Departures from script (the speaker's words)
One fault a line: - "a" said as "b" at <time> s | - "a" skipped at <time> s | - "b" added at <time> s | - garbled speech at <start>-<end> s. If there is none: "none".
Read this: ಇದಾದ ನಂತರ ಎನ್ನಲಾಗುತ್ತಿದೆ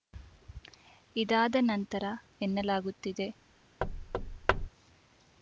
none